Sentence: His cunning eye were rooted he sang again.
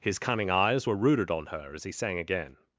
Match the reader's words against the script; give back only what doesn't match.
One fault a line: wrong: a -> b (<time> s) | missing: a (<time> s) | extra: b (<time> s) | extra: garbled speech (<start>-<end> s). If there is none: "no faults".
wrong: eye -> eyes (0.5 s)
extra: on her as (1.3 s)